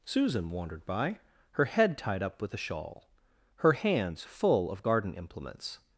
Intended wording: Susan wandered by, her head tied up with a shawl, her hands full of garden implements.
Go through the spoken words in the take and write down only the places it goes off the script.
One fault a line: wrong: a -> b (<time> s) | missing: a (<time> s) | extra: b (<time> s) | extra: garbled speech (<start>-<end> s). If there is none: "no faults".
no faults